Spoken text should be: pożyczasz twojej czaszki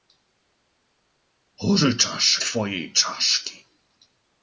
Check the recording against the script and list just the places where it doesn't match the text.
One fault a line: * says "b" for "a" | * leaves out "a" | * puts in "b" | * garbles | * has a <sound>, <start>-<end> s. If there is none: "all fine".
all fine